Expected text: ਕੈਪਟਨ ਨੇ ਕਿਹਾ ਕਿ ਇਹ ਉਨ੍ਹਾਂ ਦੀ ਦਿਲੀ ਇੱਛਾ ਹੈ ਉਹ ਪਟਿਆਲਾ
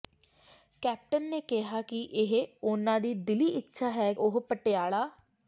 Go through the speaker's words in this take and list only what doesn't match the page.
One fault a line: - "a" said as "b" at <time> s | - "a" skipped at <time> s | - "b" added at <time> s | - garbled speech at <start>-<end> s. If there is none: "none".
none